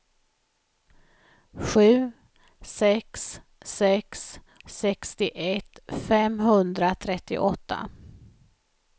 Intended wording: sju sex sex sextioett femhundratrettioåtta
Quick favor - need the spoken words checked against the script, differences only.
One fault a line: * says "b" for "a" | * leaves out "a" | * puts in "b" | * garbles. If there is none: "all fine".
all fine